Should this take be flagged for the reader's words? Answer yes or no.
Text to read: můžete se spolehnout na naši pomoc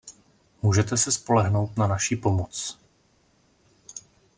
no